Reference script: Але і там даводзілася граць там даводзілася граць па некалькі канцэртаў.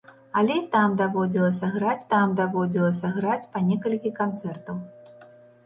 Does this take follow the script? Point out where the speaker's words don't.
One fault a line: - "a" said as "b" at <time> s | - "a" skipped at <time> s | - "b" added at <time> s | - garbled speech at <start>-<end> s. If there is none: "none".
none